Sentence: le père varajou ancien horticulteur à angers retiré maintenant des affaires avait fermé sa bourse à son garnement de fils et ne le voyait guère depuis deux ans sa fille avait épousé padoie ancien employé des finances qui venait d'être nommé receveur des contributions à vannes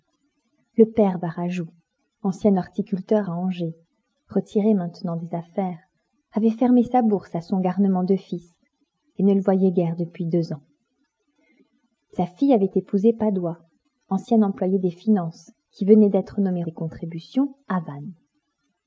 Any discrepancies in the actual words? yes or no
yes